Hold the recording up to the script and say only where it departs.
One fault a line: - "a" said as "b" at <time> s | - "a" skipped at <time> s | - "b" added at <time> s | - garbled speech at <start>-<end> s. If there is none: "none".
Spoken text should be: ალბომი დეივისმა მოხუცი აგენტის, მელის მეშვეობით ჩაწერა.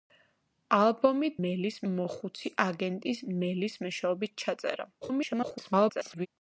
- "დეივისმა" said as "მელის" at 1.5 s
- garbled speech at 5.0-6.3 s